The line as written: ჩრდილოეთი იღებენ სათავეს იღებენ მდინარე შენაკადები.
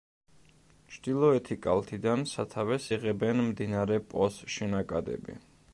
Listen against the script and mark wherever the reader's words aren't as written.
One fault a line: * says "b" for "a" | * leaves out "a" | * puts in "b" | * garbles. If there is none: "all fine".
* says "კალთიდან" for "იღებენ"
* puts in "პოს"